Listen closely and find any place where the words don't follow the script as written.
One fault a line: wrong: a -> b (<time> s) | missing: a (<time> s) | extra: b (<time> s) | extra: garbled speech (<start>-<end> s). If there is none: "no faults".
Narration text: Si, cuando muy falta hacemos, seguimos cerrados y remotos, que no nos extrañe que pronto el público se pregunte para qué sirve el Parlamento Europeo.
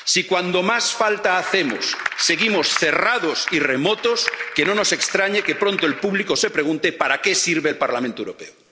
wrong: muy -> más (0.6 s)